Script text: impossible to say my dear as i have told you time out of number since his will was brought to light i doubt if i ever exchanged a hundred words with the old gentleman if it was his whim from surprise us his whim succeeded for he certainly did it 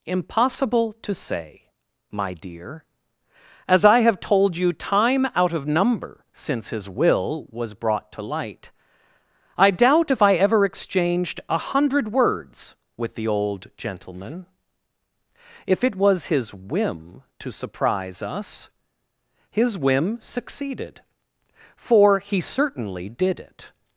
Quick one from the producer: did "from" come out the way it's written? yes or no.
no